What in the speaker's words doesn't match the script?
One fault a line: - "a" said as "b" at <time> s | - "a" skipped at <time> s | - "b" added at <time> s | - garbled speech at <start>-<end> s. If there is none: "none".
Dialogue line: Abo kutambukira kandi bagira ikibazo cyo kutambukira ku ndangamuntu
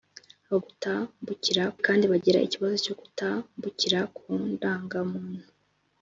none